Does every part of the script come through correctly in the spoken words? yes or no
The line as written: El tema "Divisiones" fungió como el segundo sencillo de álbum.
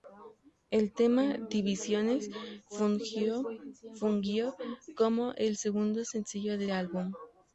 yes